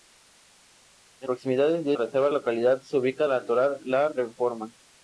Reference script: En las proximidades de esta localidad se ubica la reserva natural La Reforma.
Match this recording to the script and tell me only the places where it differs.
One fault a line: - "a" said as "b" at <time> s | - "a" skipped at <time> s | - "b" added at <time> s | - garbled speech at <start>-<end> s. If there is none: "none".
- "las" skipped at 1.3 s
- "esta" said as "reserva" at 1.9 s
- "la reserva" skipped at 3.3 s